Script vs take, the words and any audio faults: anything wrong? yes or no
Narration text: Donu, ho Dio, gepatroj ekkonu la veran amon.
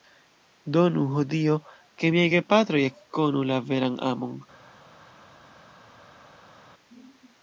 yes